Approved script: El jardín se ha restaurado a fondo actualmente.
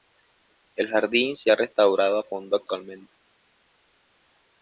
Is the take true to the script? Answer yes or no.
yes